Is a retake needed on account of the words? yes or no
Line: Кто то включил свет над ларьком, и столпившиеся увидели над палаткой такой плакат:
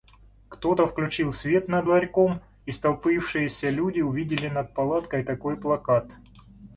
yes